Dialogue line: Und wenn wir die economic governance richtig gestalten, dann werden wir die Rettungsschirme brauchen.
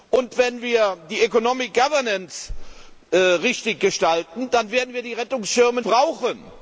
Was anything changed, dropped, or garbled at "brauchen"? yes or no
no